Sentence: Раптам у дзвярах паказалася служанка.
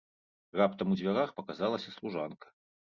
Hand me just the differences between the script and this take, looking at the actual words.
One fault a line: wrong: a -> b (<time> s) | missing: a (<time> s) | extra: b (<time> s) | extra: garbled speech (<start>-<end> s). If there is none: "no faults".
no faults